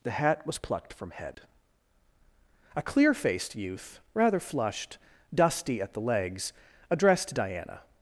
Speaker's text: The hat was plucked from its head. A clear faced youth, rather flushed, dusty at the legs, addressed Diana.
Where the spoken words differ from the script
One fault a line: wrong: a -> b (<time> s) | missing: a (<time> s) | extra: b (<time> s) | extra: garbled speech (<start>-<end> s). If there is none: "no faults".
missing: its (1.1 s)